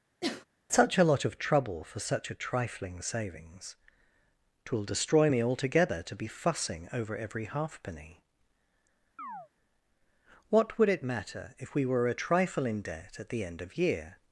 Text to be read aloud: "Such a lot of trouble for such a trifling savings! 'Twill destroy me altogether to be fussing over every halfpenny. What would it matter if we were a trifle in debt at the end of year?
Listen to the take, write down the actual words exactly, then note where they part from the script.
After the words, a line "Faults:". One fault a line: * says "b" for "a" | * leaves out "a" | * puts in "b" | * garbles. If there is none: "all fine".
"Such a lot of trouble for such a trifling savings! 'Twill destroy me altogether to be fussing over every halfpenny. What would it matter if we were a trifle in debt at the end of year?
Faults:
all fine